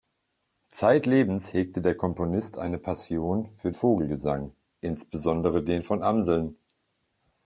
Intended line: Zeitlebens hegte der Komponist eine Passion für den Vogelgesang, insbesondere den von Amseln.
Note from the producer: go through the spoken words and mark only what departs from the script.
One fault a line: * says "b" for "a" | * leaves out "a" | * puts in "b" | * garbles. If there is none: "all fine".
* leaves out "den"